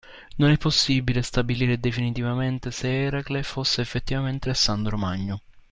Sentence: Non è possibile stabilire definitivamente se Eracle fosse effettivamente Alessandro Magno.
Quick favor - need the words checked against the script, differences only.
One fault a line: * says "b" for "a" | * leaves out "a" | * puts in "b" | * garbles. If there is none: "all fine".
all fine